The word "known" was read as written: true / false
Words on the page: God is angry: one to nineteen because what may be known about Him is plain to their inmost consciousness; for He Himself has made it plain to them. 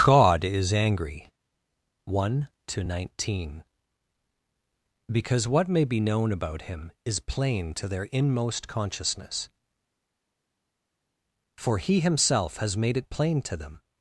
true